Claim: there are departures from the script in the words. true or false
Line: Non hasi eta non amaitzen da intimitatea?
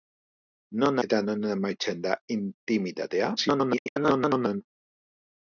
true